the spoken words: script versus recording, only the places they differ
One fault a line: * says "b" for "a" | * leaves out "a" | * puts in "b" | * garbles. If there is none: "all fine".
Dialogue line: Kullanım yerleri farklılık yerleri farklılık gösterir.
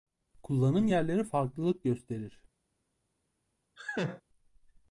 * leaves out "yerleri farklılık"